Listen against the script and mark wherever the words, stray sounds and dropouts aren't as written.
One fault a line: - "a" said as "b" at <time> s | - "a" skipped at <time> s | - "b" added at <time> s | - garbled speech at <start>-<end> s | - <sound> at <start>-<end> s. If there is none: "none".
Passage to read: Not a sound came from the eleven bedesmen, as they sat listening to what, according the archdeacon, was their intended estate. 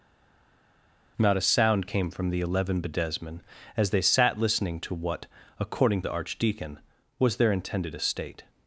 none